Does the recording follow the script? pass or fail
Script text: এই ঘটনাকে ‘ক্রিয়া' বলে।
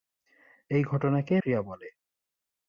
pass